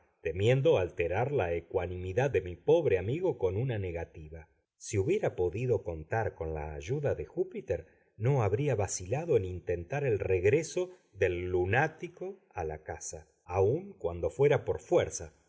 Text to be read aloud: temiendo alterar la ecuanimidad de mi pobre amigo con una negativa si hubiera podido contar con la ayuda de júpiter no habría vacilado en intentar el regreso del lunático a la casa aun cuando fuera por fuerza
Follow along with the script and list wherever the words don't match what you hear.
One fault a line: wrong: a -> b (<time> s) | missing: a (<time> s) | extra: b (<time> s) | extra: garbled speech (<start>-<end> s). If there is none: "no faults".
no faults